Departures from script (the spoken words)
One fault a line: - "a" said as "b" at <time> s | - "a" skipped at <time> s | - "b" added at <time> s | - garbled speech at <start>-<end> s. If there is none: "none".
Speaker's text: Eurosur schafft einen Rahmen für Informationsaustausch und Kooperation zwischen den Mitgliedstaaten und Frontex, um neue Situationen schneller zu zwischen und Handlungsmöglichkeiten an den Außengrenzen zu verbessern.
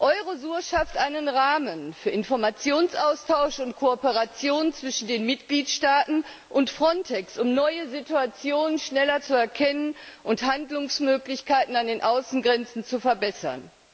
- "zwischen" said as "erkennen" at 9.4 s